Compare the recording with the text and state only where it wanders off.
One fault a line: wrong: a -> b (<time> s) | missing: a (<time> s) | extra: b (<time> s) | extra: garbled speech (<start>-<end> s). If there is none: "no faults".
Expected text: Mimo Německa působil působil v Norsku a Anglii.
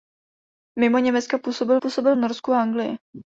no faults